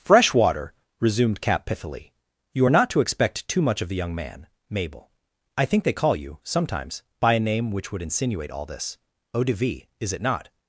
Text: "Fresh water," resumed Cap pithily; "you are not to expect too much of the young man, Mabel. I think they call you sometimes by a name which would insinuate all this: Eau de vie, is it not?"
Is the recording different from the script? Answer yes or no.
no